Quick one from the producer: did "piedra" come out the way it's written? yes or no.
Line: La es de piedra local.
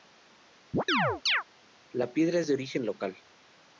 no